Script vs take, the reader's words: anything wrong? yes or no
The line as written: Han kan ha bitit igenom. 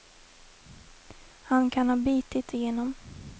no